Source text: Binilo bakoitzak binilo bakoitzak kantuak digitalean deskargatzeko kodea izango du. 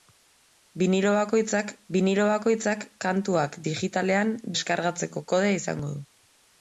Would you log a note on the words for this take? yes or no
no